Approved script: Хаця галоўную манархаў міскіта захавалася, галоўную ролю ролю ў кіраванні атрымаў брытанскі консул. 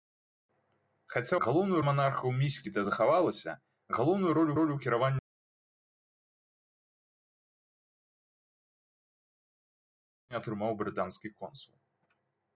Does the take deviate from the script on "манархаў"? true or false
false